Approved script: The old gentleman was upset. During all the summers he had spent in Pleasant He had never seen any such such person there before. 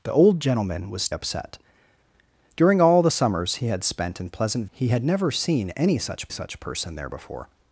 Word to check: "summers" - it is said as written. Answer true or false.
true